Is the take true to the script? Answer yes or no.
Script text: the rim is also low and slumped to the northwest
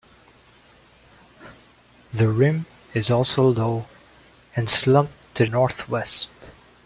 no